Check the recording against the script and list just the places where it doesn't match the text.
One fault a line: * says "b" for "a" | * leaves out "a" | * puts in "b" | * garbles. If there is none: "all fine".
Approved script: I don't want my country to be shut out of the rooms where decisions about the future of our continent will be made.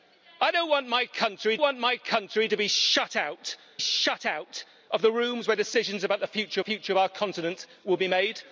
* puts in "want my country"
* puts in "shut out"
* puts in "future"